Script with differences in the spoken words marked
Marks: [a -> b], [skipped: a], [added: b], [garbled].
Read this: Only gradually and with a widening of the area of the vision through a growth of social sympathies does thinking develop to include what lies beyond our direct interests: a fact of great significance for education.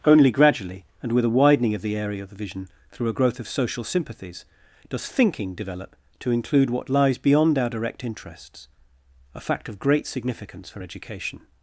Only gradually and with a widening of the area of the vision through a growth of social sympathies does thinking develop to include what lies beyond our direct interests: a fact of great significance for education.